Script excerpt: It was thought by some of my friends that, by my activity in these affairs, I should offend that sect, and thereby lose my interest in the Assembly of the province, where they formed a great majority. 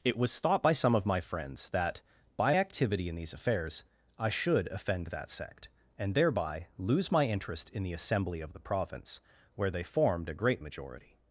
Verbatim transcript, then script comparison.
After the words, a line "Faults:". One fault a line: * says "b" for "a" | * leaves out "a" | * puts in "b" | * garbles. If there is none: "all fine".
It was thought by some of my friends that, by activity in these affairs, I should offend that sect, and thereby lose my interest in the Assembly of the province, where they formed a great majority.
Faults:
* leaves out "my"